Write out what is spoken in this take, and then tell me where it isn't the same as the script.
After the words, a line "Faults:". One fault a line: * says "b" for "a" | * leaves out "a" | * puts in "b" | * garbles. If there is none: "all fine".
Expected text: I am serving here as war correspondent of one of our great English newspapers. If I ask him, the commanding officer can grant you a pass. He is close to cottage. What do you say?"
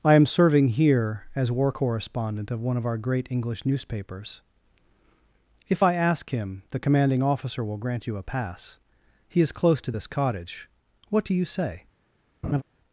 I am serving here as war correspondent of one of our great English newspapers. If I ask him, the commanding officer will grant you a pass. He is close to this cottage. What do you say?"
Faults:
* says "will" for "can"
* puts in "this"